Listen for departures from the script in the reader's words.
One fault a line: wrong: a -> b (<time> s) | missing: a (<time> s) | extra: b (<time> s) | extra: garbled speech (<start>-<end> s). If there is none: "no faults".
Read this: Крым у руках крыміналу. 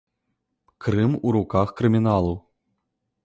no faults